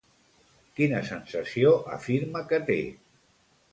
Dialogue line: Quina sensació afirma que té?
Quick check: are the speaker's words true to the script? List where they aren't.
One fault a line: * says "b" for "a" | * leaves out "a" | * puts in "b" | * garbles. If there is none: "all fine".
all fine